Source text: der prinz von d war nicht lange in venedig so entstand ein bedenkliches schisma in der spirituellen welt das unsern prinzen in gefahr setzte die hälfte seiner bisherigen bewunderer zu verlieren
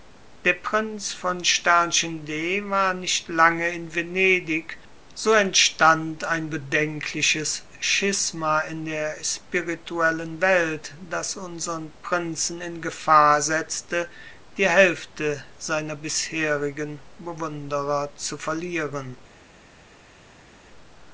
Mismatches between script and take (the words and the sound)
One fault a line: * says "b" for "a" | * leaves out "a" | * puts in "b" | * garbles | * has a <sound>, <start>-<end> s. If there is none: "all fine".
all fine